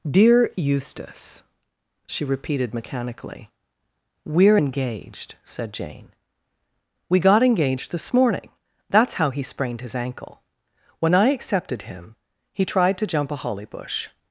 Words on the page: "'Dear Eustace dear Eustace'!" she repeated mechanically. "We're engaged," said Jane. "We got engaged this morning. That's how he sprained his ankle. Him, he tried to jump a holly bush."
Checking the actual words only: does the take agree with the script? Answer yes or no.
no